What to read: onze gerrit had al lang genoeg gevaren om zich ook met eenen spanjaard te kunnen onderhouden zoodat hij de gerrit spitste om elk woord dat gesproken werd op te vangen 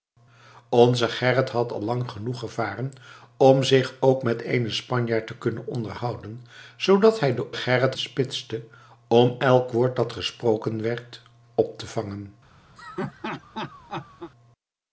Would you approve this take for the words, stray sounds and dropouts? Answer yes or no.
no